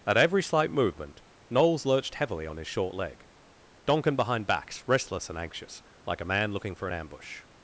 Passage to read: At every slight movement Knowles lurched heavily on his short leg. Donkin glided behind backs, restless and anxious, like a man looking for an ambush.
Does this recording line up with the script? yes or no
no